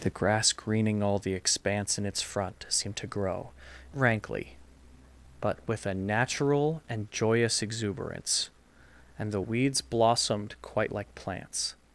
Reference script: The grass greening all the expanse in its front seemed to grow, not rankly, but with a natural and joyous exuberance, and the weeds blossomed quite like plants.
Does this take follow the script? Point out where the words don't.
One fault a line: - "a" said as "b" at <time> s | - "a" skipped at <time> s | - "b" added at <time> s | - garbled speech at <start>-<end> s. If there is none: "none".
- "not" skipped at 3.5 s